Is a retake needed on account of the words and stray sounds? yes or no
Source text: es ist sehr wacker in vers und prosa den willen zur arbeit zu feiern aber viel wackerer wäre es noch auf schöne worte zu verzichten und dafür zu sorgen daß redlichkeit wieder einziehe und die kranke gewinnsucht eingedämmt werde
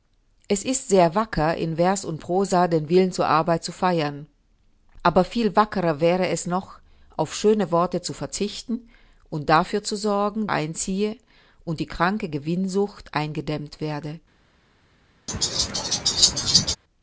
yes